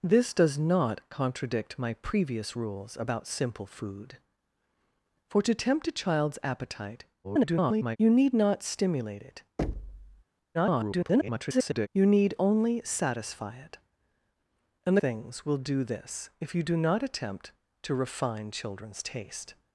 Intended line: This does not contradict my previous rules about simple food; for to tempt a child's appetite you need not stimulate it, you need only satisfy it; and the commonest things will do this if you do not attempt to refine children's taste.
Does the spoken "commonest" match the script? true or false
false